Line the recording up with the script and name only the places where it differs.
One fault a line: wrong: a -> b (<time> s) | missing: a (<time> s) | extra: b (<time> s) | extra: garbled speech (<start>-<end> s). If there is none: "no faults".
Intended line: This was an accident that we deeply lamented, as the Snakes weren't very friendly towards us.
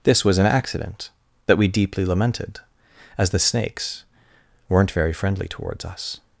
no faults